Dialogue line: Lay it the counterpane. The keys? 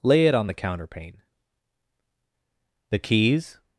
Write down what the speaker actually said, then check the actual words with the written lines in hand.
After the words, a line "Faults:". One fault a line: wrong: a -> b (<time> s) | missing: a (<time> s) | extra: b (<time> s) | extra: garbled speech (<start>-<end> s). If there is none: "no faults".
Lay it on the counterpane. The keys?
Faults:
extra: on (0.3 s)